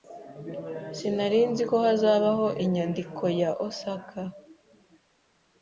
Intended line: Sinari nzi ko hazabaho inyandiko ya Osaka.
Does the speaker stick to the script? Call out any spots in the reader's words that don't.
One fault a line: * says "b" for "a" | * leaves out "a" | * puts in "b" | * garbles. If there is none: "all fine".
all fine